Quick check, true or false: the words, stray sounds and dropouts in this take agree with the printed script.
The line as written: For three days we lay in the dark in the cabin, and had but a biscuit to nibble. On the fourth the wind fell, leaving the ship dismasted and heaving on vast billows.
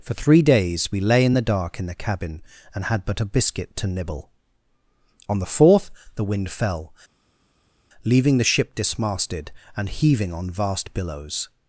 true